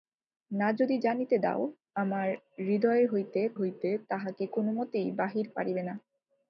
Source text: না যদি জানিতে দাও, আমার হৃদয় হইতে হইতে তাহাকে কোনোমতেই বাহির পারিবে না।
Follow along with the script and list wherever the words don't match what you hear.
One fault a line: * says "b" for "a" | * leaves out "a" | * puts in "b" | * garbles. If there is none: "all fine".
all fine